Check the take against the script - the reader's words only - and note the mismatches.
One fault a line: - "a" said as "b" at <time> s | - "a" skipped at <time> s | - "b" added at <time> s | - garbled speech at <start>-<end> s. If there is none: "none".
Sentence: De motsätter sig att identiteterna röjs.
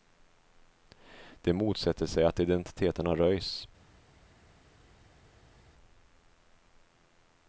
none